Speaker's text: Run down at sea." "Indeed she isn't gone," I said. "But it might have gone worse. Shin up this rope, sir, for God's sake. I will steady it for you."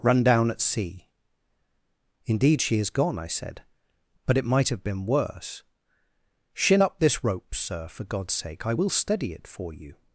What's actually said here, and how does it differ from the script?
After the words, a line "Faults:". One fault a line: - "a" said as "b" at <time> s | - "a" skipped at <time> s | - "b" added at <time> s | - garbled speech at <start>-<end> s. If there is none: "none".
Run down at sea." "Indeed she is gone," I said. "But it might have been worse. Shin up this rope, sir, for God's sake. I will steady it for you."
Faults:
- "isn't" said as "is" at 2.8 s
- "gone" said as "been" at 4.8 s